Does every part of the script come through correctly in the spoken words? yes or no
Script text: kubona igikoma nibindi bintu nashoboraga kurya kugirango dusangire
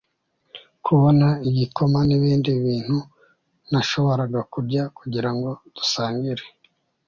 yes